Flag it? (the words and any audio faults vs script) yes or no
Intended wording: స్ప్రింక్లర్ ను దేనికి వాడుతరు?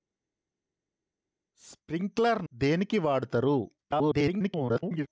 yes